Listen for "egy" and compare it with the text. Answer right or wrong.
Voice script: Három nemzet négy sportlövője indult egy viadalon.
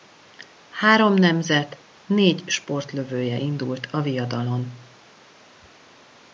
wrong